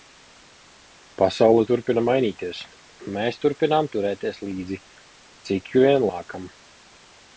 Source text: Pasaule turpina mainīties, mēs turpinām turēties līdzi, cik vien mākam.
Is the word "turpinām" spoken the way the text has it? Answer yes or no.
yes